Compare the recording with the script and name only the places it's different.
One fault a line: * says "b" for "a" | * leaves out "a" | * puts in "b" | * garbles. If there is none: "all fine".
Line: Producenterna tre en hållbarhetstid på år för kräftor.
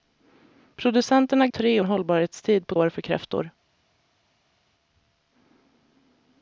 all fine